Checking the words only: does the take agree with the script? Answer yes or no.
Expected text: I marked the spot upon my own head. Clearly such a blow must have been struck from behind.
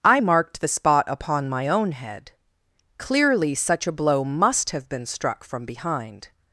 yes